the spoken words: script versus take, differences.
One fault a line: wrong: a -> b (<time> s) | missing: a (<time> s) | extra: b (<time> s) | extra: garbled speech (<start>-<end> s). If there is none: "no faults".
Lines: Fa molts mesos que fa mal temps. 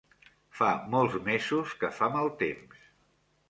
no faults